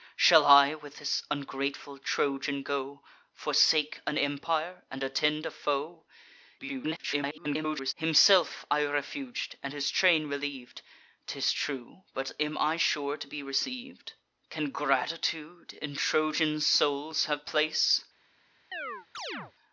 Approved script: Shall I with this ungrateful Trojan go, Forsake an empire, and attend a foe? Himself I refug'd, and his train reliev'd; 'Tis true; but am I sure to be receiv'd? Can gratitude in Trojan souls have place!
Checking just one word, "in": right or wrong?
right